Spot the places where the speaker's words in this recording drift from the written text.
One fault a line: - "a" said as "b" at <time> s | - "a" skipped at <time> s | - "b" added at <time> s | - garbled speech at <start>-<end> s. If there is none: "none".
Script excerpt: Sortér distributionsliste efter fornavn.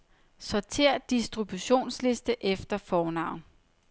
none